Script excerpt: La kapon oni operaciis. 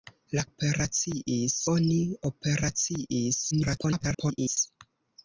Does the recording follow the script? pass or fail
fail